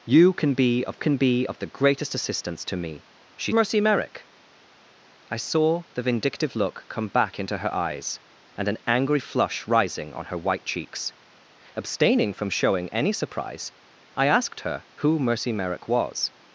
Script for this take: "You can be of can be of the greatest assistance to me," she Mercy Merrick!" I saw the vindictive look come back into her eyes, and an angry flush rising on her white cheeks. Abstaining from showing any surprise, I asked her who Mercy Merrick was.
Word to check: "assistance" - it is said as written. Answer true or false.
true